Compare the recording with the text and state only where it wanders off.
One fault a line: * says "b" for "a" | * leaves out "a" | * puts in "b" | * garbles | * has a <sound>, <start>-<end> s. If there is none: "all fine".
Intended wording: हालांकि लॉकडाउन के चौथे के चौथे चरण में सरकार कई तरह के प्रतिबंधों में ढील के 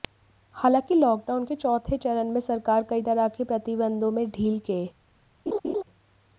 * leaves out "के चौथे"
* has a laugh, 5.5-5.8 s